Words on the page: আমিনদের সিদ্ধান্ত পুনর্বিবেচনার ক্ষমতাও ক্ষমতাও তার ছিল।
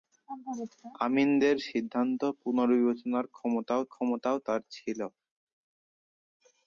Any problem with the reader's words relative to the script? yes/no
no